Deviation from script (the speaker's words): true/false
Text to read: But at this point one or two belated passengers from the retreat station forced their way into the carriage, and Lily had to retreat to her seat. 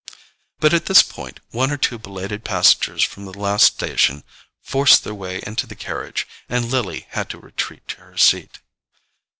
true